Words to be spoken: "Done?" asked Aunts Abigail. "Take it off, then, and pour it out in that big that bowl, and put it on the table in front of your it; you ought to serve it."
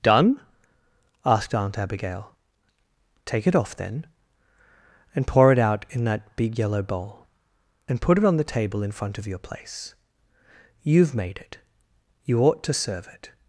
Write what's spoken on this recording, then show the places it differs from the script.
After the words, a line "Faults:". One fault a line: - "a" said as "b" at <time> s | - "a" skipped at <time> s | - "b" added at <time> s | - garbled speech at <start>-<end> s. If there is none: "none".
"Done?" asked Aunt Abigail. "Take it off, then, and pour it out in that big yellow bowl, and put it on the table in front of your place. You've made it; you ought to serve it."
Faults:
- "Aunts" said as "Aunt" at 1.5 s
- "that" said as "yellow" at 6.6 s
- "place You've made" added at 9.4 s